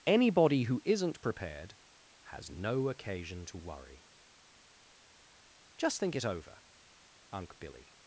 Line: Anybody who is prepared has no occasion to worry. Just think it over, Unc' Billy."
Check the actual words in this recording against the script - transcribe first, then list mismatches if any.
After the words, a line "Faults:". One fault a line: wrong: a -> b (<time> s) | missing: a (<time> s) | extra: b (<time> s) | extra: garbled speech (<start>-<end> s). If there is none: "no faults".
Anybody who isn't prepared has no occasion to worry. Just think it over, Unc' Billy."
Faults:
wrong: is -> isn't (0.8 s)